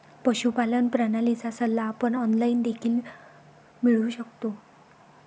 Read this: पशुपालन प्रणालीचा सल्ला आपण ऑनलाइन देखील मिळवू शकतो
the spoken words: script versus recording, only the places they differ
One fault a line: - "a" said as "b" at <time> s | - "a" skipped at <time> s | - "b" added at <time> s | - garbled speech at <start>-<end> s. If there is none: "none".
none